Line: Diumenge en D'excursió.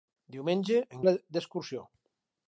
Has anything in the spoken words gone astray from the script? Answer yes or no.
no